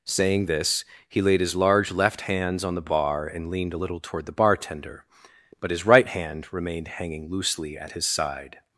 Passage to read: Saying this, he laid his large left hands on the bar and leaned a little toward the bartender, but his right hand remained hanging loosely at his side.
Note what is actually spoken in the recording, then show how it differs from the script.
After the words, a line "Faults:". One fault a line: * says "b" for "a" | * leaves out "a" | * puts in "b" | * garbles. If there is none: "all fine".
Saying this, he laid his large left hands on the bar and leaned a little toward the bartender, but his right hand remained hanging loosely at his side.
Faults:
all fine